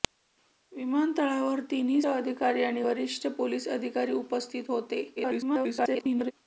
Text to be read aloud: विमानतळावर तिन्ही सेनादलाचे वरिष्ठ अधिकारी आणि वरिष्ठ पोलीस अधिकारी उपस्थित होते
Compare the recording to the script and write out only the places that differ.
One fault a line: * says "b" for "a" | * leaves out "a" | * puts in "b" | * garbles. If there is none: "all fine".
* leaves out "सेनादलाचे वरिष्ठ"
* garbles